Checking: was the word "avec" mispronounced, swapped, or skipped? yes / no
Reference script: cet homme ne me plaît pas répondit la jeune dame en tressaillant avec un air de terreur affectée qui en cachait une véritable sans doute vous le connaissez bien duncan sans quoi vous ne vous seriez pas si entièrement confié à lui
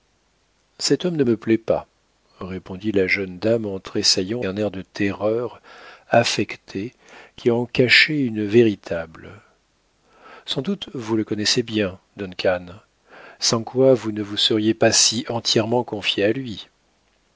yes